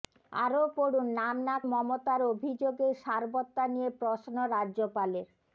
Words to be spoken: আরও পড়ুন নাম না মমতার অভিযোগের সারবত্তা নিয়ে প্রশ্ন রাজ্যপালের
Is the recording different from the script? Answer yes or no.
no